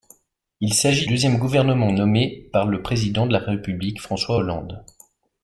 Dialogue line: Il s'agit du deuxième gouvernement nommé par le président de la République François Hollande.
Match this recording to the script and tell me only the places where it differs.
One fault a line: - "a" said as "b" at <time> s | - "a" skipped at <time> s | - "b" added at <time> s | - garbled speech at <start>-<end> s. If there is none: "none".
- "du" skipped at 1.1 s